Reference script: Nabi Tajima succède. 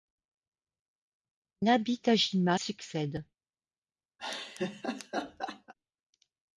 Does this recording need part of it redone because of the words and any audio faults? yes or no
yes